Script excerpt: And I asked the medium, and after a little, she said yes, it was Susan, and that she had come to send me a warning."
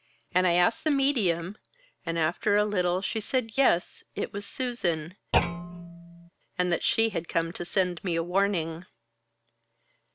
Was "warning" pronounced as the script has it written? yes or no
yes